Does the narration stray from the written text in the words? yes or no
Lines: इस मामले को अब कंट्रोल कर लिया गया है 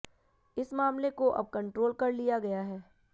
no